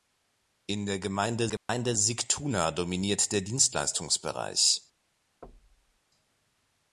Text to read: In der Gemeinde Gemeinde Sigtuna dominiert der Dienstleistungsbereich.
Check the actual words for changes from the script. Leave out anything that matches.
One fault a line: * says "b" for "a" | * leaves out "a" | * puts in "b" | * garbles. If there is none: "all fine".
all fine